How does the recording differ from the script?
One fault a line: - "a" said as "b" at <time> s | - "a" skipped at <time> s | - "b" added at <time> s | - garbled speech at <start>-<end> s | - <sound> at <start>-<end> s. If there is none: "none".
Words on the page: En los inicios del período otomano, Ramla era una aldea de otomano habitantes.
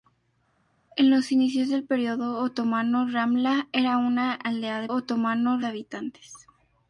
none